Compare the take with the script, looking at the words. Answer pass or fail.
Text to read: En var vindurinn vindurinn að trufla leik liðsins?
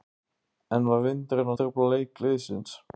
fail